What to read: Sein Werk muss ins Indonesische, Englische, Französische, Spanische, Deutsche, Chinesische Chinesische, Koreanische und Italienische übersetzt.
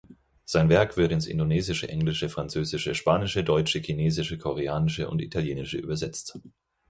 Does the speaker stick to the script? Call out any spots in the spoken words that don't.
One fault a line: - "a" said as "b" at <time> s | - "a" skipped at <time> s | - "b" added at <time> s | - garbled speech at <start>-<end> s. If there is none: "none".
- "muss" said as "wird" at 1.0 s
- "Chinesische" skipped at 4.4 s